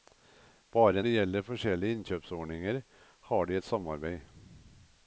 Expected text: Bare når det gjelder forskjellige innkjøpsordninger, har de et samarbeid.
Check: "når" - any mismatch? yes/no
yes